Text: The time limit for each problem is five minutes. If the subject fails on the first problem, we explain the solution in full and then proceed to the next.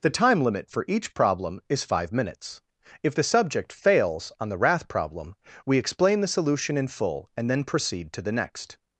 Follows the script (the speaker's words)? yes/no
no